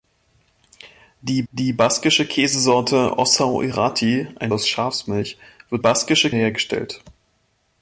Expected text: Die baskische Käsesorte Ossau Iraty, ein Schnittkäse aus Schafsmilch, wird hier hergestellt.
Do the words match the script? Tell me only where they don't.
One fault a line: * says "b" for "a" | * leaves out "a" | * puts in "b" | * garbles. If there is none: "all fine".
* puts in "die"
* leaves out "Schnittkäse"
* says "baskische" for "hier"